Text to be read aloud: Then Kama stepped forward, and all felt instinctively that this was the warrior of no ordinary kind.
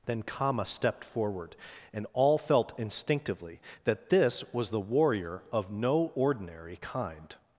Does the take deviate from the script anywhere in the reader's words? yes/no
no